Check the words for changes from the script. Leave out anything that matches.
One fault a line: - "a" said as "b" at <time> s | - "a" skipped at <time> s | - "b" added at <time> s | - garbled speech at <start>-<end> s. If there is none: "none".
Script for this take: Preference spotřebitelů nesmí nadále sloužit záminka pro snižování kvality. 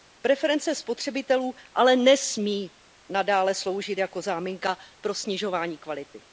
- "ale" added at 1.7 s
- "jako" added at 4.0 s